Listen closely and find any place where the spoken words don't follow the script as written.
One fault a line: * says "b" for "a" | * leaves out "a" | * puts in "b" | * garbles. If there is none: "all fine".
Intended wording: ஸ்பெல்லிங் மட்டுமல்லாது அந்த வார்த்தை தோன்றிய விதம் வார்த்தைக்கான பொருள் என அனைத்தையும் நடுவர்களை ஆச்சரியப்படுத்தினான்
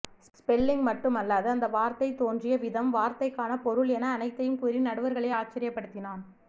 * puts in "கூறி"